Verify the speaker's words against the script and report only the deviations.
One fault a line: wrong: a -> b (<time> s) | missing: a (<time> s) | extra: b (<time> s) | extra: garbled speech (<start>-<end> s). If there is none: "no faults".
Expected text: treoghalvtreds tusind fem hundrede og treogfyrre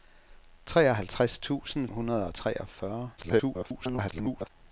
missing: fem (1.9 s)
extra: garbled speech (3.2-4.5 s)